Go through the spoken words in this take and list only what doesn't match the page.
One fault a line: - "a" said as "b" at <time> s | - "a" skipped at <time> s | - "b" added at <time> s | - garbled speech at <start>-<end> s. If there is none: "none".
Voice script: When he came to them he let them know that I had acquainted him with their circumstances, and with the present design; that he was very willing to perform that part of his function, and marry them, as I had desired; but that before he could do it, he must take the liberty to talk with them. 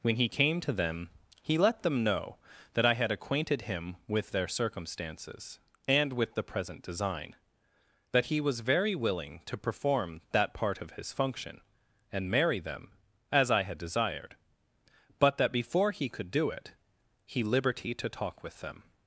- "must take the" skipped at 17.4 s